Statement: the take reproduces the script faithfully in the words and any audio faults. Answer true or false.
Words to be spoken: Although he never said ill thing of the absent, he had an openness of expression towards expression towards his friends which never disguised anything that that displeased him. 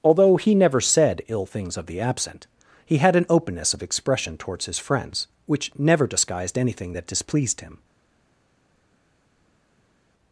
false